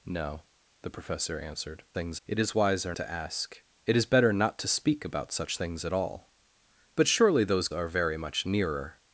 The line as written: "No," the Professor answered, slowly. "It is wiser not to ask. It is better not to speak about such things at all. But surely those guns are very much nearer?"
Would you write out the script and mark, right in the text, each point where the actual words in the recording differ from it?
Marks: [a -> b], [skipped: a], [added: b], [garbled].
"No," the Professor answered, [slowly. -> things] "It is wiser [skipped: not] to ask. It is better not to speak about such things at all. But surely those [skipped: guns] are very much nearer?"